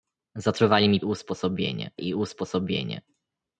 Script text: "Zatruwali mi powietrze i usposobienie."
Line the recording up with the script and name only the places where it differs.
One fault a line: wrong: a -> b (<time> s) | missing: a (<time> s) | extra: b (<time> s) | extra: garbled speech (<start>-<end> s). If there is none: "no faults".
wrong: powietrze -> usposobienie (1.0 s)